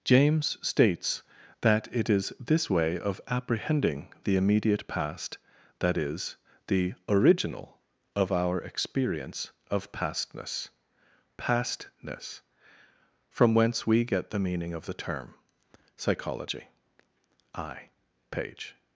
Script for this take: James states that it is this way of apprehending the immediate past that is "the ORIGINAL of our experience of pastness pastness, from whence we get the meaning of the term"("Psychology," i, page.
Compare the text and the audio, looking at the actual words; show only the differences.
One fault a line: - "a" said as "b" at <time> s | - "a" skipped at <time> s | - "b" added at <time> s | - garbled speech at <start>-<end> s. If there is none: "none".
none